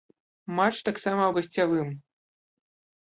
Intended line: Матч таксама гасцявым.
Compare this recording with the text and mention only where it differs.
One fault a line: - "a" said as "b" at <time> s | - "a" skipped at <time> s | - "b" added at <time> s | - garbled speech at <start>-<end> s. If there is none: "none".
none